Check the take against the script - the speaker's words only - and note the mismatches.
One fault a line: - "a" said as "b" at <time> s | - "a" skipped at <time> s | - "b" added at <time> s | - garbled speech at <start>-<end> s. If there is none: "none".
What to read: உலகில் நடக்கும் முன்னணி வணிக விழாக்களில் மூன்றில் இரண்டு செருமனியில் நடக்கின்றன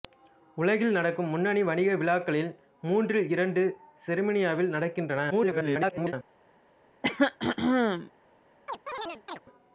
- garbled speech at 5.3-6.1 s